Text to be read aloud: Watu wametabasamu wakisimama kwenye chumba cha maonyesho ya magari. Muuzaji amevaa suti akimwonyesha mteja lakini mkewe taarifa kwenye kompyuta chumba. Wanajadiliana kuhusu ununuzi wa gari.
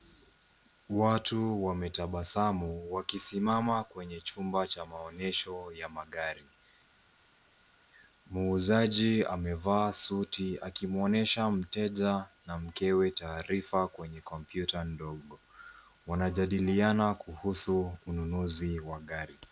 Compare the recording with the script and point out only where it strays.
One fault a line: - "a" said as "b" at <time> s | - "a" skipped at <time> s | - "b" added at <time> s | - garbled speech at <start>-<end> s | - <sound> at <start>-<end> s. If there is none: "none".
- "lakini" said as "na" at 12.5 s
- "chumba" said as "ndogo" at 14.8 s